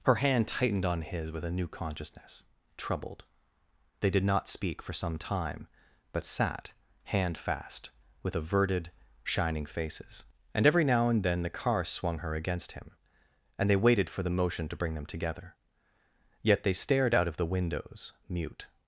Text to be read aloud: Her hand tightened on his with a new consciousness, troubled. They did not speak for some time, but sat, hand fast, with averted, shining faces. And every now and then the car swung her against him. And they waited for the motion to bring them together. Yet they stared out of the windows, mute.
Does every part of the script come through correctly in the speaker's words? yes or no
yes